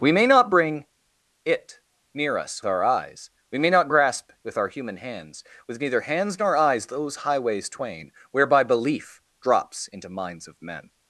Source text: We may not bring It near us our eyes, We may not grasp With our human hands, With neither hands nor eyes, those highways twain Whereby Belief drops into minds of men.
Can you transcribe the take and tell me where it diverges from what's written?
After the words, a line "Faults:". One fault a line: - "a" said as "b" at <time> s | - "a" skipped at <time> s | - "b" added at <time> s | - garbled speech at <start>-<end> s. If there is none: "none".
We may not bring It near us our eyes, We may not grasp With our human hands, With neither hands nor eyes, those highways twain Whereby Belief drops into minds of men.
Faults:
none